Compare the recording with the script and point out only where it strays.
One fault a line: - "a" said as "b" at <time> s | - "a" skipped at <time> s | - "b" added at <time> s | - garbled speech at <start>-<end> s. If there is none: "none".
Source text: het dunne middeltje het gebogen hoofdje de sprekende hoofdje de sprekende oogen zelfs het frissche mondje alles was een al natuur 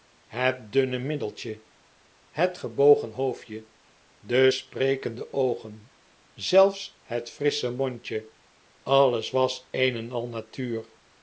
- "hoofdje de sprekende" skipped at 5.3 s
- "en" added at 10.0 s